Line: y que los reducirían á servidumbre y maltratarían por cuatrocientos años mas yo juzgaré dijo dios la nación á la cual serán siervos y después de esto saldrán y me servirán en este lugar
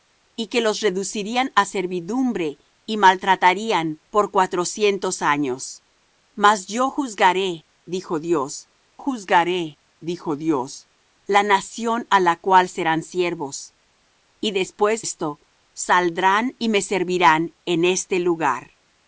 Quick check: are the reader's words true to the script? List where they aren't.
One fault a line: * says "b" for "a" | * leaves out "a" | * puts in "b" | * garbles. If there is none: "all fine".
* puts in "juzgaré dijo dios"
* leaves out "de"